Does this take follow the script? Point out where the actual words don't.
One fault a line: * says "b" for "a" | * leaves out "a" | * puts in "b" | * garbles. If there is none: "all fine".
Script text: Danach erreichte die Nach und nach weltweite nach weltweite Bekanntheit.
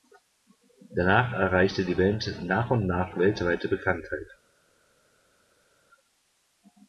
* puts in "Band"
* leaves out "nach weltweite"